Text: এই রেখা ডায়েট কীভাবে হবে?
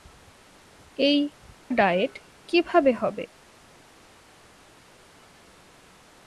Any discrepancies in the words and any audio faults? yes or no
yes